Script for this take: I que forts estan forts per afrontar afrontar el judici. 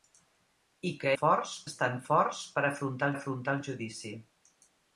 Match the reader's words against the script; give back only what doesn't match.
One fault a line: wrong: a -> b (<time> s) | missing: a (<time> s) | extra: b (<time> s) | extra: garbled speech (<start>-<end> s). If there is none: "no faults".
no faults